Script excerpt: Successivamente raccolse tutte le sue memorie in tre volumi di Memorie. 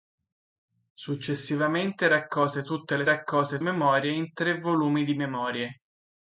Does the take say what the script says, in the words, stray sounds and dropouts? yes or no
no